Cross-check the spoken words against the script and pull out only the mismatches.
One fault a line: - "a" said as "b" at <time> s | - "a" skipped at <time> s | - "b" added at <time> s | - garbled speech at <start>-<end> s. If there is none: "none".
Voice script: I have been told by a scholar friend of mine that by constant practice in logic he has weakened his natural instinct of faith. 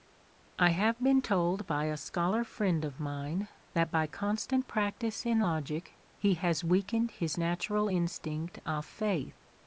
none